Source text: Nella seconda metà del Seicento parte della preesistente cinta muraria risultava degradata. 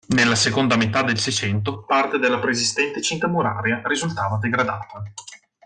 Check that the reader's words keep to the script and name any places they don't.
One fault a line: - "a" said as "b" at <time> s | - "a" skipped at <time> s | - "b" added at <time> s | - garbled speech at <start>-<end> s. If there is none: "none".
none